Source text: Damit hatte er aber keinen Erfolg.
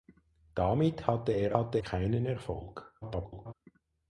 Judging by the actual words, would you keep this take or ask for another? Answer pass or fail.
fail